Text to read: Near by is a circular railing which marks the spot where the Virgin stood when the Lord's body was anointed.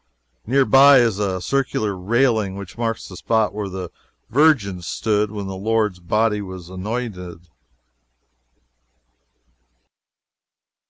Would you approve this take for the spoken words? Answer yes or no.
yes